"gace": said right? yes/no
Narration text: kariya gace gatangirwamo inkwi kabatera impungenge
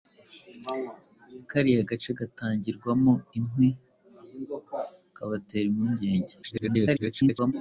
yes